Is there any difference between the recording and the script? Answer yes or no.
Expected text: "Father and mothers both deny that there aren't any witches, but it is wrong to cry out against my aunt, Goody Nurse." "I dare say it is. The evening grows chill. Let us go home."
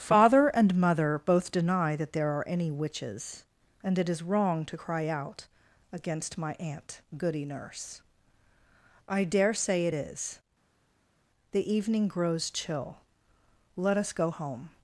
yes